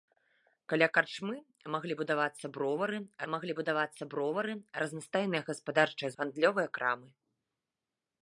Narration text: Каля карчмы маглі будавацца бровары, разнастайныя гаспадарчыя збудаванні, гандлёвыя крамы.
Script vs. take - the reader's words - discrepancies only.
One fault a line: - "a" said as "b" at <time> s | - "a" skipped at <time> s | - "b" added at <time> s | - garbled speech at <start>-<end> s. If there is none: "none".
- "маглі будавацца бровары" added at 3.3 s
- "збудаванні" skipped at 6.1 s